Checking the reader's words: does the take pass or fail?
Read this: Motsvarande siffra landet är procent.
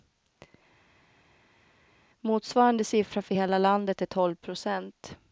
fail